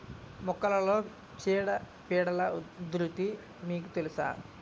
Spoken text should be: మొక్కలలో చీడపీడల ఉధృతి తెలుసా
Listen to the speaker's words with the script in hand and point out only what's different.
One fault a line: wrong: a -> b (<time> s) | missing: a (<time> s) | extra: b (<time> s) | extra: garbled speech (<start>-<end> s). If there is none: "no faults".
extra: మీకు (3.6 s)